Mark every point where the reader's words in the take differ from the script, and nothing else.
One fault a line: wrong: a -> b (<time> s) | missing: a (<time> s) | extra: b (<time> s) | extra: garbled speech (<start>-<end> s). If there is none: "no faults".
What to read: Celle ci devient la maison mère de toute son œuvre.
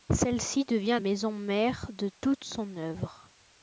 missing: la (1.0 s)